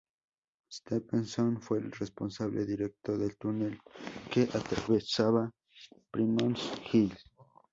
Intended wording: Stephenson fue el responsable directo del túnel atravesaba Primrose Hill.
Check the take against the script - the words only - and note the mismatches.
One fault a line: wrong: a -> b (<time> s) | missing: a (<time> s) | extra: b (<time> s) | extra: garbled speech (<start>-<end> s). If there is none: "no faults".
extra: que (4.3 s)